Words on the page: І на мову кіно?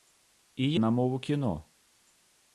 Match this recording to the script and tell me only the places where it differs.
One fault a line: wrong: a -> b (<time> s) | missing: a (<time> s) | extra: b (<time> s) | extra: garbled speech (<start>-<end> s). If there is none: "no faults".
no faults